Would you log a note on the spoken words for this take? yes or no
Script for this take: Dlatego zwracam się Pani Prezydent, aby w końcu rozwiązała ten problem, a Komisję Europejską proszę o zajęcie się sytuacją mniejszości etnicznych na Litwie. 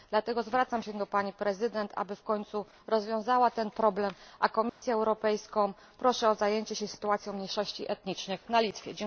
yes